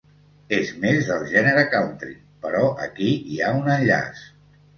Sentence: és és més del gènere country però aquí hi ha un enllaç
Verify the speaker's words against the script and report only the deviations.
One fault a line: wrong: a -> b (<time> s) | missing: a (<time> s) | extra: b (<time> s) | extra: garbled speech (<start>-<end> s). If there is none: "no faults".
missing: és (0.7 s)